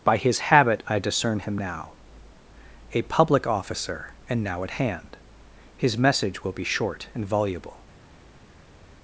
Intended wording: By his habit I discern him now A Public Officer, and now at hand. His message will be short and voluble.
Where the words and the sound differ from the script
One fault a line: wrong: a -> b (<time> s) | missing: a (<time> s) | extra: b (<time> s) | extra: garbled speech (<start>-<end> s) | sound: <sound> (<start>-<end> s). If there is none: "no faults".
no faults